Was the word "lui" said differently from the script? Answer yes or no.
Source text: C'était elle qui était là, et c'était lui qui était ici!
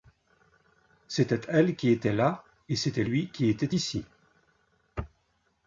no